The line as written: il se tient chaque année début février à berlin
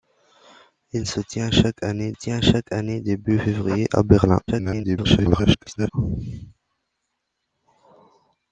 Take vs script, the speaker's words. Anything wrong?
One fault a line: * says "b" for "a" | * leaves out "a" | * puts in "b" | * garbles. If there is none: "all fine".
* puts in "tient chaque année"
* garbles